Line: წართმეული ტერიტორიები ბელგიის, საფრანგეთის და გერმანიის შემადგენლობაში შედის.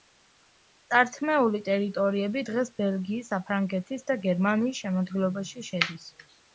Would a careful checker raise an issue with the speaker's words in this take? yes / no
yes